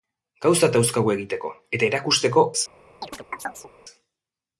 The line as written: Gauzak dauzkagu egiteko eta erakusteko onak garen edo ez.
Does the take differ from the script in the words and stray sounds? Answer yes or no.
yes